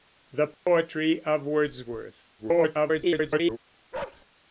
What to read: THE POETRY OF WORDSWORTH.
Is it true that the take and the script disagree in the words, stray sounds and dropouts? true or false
true